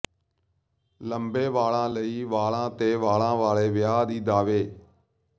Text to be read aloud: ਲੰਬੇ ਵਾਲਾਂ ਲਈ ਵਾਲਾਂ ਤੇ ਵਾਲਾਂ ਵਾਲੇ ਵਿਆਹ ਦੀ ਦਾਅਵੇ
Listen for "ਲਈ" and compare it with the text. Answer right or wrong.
right